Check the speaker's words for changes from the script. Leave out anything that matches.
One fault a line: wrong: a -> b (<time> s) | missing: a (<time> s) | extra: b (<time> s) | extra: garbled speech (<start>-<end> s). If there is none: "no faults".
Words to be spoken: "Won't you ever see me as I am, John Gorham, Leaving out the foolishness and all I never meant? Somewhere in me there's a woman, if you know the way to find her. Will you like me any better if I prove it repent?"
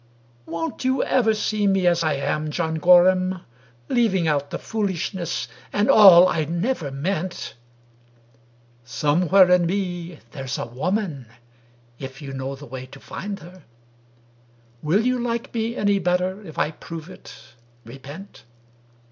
no faults